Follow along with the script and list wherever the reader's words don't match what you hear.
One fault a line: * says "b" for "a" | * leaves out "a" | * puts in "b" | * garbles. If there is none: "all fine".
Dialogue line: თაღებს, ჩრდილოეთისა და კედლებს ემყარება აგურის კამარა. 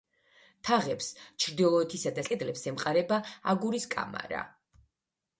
all fine